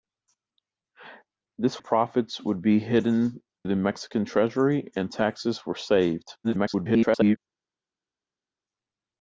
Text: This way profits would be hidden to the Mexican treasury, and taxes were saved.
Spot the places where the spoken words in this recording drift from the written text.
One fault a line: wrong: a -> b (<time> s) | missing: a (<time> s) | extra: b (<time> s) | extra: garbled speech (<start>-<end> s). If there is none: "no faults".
missing: way (1.8 s)
missing: to (3.4 s)
extra: garbled speech (6.4-7.4 s)